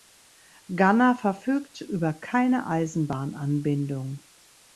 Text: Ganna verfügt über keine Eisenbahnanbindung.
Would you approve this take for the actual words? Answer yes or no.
yes